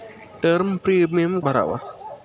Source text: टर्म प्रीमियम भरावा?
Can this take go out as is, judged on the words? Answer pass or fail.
pass